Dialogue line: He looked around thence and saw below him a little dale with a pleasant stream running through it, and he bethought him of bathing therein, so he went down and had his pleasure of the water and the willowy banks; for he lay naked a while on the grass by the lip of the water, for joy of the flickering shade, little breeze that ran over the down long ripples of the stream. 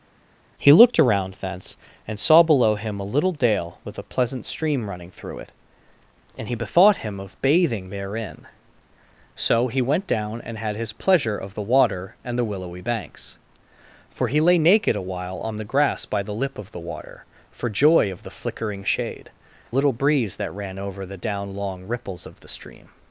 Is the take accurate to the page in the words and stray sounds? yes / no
yes